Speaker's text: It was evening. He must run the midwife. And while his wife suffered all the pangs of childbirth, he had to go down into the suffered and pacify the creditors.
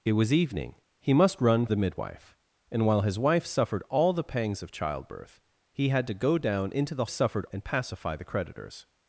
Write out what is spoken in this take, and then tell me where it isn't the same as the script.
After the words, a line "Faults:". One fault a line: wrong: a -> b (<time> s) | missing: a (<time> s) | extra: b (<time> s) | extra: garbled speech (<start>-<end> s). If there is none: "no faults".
It was evening. He must run the midwife. And while his wife suffered all the pangs of childbirth, he had to go down into the suffered and pacify the creditors.
Faults:
no faults